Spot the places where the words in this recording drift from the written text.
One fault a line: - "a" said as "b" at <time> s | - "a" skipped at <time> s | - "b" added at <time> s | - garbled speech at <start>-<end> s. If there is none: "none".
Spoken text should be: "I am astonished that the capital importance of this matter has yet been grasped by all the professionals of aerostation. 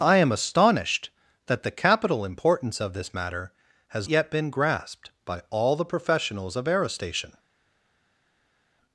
none